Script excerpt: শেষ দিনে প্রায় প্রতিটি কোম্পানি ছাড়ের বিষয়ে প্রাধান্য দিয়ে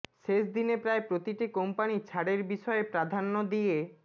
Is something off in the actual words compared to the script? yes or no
no